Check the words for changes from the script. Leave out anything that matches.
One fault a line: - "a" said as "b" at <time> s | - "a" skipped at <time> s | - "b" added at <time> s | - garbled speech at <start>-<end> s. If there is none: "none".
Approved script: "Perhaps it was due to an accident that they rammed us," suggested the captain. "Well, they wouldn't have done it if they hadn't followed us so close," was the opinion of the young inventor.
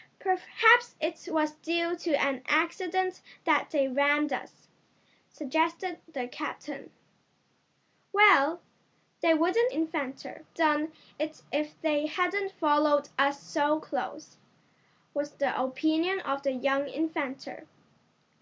- "have" said as "inventor" at 9.7 s